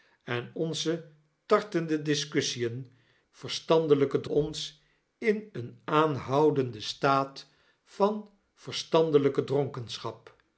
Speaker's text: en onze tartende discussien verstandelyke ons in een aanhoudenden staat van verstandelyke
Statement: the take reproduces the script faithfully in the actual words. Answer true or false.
true